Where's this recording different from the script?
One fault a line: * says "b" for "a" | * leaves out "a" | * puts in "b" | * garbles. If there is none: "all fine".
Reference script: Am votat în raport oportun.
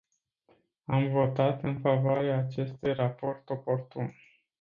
* puts in "favoarea acestui"